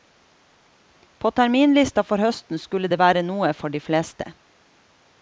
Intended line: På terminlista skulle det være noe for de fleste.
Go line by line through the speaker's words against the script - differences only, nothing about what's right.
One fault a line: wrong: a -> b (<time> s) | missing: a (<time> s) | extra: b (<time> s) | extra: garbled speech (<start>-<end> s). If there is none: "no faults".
extra: for høsten (2.0 s)